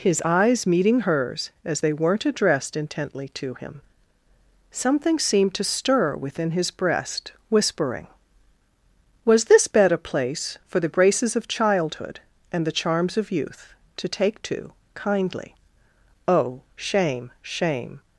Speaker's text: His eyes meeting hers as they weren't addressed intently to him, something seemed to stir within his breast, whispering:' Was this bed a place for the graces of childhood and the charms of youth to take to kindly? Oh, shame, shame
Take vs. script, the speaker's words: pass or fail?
pass